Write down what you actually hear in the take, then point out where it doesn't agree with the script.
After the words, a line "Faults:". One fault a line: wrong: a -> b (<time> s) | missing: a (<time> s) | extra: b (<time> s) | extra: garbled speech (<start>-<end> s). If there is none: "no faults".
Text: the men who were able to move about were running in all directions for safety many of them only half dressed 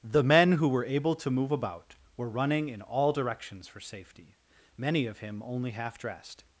the men who were able to move about were running in all directions for safety many of him only half dressed
Faults:
wrong: them -> him (5.2 s)